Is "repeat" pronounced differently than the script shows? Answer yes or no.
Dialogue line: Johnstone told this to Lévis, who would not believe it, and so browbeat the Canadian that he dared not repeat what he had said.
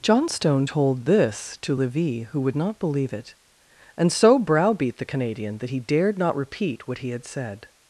no